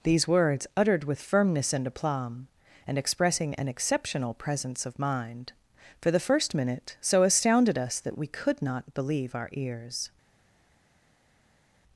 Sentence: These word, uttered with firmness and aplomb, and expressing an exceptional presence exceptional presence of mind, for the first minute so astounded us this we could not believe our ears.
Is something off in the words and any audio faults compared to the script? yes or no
yes